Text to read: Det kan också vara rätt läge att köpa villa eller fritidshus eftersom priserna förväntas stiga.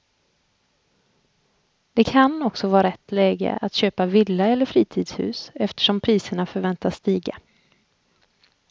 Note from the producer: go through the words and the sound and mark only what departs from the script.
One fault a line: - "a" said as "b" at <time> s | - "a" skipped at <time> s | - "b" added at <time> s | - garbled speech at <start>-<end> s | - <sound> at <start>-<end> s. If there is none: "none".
none